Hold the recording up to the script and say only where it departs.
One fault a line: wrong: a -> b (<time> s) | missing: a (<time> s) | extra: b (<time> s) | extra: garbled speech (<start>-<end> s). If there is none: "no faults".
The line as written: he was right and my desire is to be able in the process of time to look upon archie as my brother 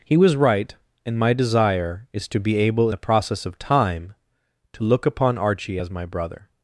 missing: in (2.9 s)